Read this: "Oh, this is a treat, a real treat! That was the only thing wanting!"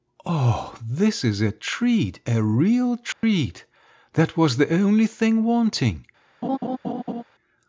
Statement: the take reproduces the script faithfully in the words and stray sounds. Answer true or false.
false